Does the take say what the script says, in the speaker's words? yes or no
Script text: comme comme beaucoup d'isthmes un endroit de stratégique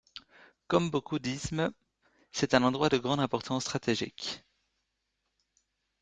no